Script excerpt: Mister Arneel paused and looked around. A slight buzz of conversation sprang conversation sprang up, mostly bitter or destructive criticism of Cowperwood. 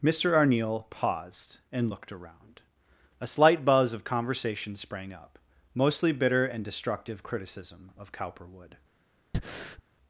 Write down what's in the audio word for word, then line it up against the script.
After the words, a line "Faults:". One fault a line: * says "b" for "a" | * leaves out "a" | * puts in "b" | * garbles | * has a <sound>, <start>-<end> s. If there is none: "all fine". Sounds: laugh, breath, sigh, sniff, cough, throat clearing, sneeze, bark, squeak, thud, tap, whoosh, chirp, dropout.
Mister Arneel paused and looked around. A slight buzz of conversation sprang up, mostly bitter and destructive criticism of Cowperwood.
Faults:
* leaves out "conversation sprang"
* says "and" for "or"
* has a breath, 9.3-9.8 s